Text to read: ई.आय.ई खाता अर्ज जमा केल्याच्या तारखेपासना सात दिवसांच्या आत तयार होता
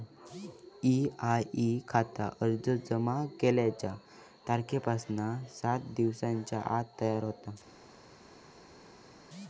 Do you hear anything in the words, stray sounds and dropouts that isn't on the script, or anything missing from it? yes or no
no